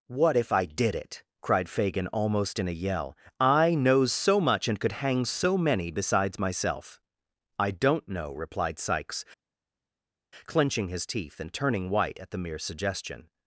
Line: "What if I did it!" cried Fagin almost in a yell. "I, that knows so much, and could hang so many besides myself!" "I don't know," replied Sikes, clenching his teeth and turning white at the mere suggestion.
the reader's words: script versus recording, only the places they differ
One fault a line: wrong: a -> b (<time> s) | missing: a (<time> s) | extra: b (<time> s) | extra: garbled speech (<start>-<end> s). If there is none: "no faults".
missing: that (3.8 s)